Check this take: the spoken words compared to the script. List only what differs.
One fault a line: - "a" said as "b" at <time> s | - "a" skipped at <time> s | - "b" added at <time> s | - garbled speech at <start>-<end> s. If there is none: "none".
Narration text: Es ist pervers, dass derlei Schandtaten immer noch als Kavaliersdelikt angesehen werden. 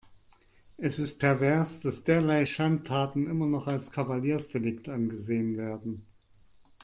none